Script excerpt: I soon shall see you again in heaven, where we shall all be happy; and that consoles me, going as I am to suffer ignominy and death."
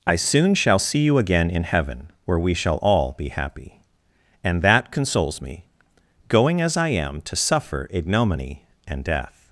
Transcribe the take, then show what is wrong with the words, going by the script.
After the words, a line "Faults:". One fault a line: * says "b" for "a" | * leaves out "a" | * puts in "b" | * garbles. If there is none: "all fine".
I soon shall see you again in heaven, where we shall all be happy; and that consoles me, going as I am to suffer ignominy and death."
Faults:
all fine